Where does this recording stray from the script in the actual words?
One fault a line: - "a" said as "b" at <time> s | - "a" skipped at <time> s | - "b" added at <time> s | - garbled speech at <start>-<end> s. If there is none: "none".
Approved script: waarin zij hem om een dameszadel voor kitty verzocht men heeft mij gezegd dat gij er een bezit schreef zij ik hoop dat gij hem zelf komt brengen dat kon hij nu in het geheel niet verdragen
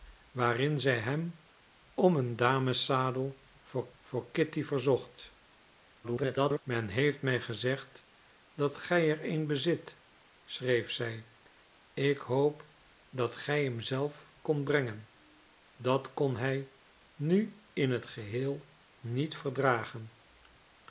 - "voor" added at 4.0 s
- garbled speech at 6.0-6.6 s